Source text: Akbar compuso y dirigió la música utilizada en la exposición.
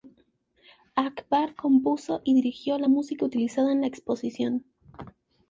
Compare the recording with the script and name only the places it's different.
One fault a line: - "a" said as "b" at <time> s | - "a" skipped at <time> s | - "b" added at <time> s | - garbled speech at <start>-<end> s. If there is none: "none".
none